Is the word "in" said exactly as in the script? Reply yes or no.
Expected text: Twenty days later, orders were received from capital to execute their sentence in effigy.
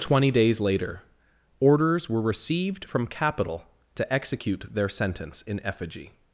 yes